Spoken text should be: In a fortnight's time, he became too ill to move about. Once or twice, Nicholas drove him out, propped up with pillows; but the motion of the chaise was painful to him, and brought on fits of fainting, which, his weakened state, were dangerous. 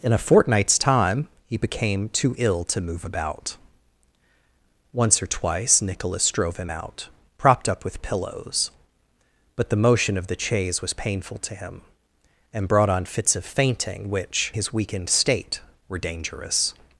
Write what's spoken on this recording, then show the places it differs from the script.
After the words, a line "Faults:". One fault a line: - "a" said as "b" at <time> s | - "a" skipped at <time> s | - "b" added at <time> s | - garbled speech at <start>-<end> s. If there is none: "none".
In a fortnight's time, he became too ill to move about. Once or twice, Nicholas drove him out, propped up with pillows; but the motion of the chaise was painful to him, and brought on fits of fainting, which, his weakened state, were dangerous.
Faults:
none